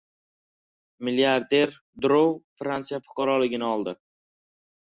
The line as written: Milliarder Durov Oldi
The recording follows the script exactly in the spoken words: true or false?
false